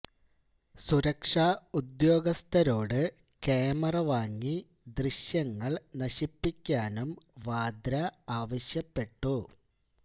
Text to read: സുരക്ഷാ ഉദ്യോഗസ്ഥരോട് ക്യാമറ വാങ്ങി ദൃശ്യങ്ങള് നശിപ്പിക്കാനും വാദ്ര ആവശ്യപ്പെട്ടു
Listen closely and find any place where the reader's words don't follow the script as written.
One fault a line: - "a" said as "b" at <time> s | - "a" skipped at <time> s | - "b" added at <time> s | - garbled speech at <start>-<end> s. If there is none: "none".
none